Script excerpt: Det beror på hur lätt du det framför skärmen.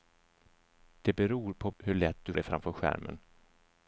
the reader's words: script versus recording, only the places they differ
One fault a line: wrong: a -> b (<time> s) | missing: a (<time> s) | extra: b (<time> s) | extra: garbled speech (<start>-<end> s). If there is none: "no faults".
no faults